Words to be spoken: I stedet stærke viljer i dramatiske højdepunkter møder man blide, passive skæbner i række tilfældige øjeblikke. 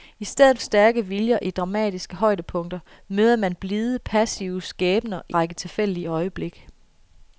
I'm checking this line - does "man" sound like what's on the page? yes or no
yes